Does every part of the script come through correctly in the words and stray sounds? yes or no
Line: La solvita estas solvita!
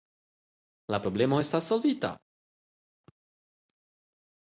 no